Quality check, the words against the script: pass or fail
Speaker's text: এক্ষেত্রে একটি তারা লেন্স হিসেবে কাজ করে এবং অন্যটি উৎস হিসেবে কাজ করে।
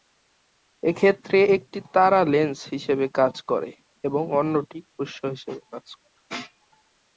pass